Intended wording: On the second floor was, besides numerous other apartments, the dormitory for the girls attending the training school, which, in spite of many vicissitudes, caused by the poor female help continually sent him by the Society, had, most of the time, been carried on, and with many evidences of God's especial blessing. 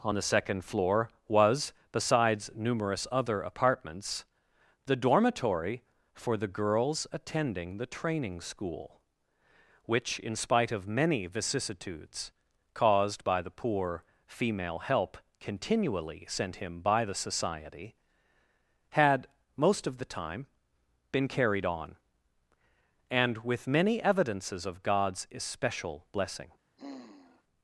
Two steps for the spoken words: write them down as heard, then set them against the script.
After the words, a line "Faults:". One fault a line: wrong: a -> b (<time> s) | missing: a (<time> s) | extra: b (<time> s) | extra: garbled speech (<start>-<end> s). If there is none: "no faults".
On the second floor was, besides numerous other apartments, the dormitory for the girls attending the training school, which, in spite of many vicissitudes, caused by the poor female help continually sent him by the Society, had, most of the time, been carried on, and with many evidences of God's especial blessing.
Faults:
no faults